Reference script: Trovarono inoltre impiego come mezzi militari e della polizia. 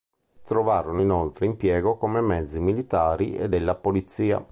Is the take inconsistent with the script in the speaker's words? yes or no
no